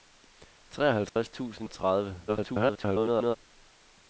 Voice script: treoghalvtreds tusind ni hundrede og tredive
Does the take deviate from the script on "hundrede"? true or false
true